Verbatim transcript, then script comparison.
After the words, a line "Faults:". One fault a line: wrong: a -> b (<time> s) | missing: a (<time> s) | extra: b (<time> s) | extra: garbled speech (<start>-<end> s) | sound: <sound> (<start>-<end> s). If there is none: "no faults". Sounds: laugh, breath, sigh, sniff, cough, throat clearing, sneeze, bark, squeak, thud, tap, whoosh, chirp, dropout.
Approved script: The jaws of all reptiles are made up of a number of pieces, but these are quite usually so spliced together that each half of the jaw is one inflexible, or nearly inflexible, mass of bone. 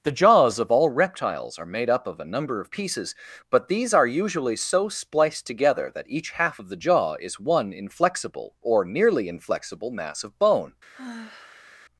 The jaws of all reptiles are made up of a number of pieces, but these are usually so spliced together that each half of the jaw is one inflexible, or nearly inflexible, mass of bone.
Faults:
missing: quite (4.1 s)
sound: sigh (10.9-11.7 s)